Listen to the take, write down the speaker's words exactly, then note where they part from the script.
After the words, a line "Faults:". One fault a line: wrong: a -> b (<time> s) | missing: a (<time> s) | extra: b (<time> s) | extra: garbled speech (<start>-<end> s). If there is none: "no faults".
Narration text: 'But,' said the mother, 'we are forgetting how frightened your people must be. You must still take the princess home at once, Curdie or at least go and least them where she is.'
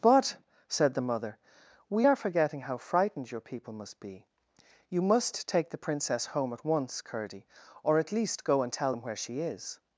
'But,' said the mother, 'we are forgetting how frightened your people must be. You must take the princess home at once, Curdie or at least go and tell them where she is.'
Faults:
missing: still (5.5 s)
wrong: least -> tell (8.7 s)